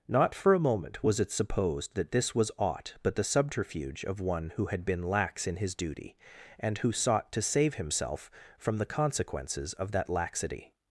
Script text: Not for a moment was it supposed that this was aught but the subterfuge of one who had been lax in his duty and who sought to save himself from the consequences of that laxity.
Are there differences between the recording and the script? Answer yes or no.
no